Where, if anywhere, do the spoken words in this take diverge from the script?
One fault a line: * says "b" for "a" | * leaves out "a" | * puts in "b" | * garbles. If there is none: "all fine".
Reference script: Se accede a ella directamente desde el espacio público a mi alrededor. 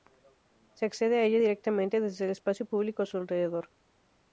* says "su" for "mi"